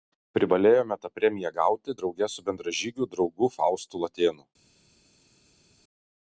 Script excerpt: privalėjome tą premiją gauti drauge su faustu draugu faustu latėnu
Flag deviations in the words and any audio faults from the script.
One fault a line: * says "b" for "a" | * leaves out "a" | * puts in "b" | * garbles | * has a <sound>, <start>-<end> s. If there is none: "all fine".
* says "bendražygiu" for "faustu"